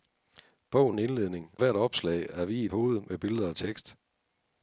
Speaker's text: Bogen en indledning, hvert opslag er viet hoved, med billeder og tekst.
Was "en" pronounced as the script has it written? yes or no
yes